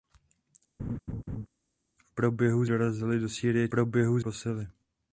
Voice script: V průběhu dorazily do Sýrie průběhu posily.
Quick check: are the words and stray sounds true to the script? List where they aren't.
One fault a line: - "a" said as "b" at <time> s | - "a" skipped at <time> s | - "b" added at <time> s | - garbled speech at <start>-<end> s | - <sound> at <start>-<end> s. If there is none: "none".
- laugh at 0.8-1.5 s